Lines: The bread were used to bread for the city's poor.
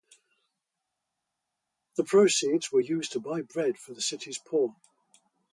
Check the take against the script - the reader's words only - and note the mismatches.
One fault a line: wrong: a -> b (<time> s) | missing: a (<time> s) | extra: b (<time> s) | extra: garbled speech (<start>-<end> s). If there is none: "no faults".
wrong: bread -> proceeds (2.0 s)
extra: buy (3.2 s)